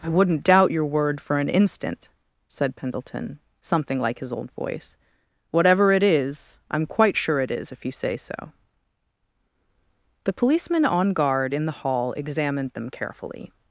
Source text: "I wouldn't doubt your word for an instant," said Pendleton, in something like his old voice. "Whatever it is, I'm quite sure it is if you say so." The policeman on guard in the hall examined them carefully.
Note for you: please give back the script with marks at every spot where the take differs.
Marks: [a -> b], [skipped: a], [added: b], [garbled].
"I wouldn't doubt your word for an instant," said Pendleton, [skipped: in] something like his old voice. "Whatever it is, I'm quite sure it is if you say so." The policeman on guard in the hall examined them carefully.